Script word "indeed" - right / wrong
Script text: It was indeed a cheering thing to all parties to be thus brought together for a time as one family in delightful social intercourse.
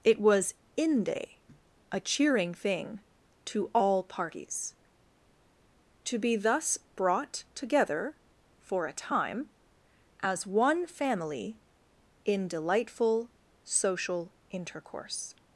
wrong